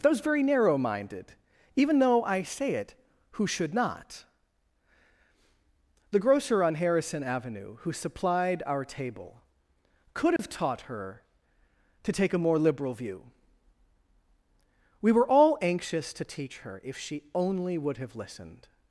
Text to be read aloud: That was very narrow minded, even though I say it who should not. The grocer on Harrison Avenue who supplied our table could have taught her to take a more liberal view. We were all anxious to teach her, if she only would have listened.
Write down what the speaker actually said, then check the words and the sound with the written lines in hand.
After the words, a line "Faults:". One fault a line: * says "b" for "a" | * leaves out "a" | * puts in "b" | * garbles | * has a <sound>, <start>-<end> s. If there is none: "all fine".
Those very narrow minded, even though I say it who should not. The grocer on Harrison Avenue who supplied our table could have taught her to take a more liberal view. We were all anxious to teach her, if she only would have listened.
Faults:
* says "Those" for "That was"
* has a dropout, 10.4-10.4 s